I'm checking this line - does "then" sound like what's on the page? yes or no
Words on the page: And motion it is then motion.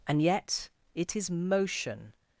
no